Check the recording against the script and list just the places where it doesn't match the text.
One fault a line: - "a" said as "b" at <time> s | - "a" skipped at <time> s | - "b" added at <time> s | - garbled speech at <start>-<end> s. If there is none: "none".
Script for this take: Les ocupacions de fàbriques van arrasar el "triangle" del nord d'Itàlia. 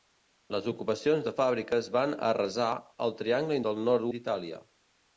none